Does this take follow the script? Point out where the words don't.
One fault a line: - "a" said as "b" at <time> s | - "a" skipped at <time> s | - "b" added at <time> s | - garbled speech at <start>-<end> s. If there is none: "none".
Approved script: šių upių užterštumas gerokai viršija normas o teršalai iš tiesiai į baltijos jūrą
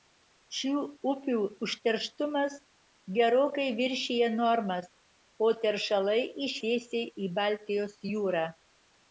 none